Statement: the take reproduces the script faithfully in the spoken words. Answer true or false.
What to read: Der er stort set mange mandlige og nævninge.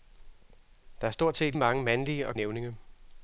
true